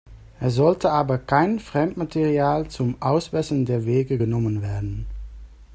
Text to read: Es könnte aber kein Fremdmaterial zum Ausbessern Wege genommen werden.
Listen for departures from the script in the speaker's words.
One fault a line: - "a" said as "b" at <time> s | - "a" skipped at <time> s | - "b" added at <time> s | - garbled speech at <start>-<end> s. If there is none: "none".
- "könnte" said as "sollte" at 0.6 s
- "der" added at 3.6 s